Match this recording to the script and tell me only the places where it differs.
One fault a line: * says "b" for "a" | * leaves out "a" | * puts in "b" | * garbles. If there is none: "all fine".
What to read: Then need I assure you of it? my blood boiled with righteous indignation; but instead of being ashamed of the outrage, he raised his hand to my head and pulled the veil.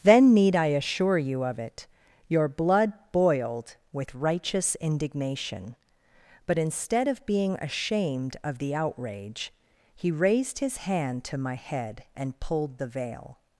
* says "your" for "my"